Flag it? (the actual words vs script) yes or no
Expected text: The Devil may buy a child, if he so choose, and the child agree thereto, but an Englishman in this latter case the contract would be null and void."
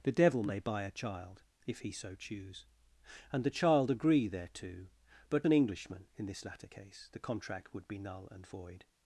no